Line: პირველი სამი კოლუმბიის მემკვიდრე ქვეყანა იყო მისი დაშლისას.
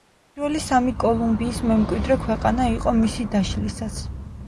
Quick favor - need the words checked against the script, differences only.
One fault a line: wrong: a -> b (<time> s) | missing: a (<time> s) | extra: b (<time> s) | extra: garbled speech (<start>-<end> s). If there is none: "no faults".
no faults